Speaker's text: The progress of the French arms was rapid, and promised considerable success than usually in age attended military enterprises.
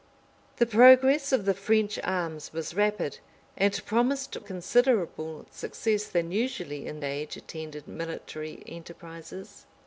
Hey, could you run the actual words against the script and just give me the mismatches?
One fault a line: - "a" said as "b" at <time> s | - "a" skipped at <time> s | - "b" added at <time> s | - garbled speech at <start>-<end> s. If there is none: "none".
none